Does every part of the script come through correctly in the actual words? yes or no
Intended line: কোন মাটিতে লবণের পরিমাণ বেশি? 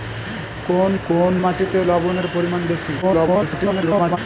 no